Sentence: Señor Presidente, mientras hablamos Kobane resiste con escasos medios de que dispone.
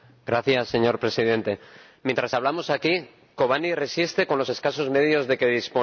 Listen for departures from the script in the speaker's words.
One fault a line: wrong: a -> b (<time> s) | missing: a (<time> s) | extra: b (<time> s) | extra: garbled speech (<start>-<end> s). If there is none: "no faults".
extra: aquí (2.7 s)
extra: los (4.4 s)